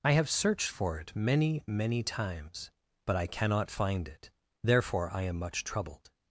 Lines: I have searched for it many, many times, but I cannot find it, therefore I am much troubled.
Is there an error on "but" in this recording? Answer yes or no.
no